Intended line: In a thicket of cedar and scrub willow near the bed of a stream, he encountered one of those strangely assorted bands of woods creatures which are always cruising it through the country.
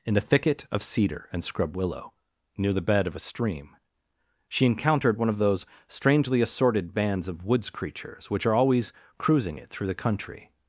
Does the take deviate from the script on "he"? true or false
true